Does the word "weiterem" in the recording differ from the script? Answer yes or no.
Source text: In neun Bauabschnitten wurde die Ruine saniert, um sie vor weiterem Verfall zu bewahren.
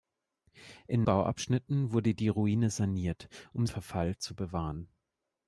yes